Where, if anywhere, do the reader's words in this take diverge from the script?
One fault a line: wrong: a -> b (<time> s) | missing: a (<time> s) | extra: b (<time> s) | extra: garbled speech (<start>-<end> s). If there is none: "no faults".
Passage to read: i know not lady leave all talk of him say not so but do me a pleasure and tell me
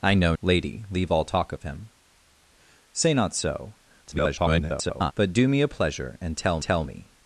missing: not (0.3 s)
extra: garbled speech (4.1-5.1 s)
extra: tell (6.6 s)